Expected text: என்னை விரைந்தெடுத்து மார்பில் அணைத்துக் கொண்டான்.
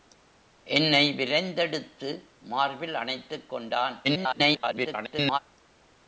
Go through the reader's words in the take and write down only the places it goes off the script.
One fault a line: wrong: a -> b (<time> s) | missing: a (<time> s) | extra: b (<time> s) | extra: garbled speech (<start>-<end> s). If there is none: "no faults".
extra: garbled speech (4.0-5.4 s)